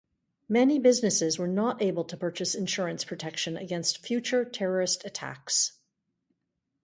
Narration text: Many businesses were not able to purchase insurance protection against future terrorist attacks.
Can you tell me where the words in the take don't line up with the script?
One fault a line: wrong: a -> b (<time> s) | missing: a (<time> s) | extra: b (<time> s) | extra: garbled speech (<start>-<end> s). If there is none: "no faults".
no faults